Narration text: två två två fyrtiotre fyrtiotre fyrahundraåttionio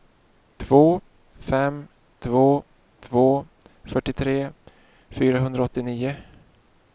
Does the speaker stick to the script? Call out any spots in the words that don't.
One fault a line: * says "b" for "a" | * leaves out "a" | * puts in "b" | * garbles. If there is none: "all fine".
* puts in "fem"
* leaves out "fyrtiotre"